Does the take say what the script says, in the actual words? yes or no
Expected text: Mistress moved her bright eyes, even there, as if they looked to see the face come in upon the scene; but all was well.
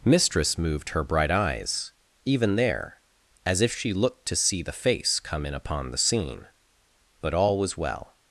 no